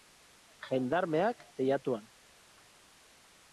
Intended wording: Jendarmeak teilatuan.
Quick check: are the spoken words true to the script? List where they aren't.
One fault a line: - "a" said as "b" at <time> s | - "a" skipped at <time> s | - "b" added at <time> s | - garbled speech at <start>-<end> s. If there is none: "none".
none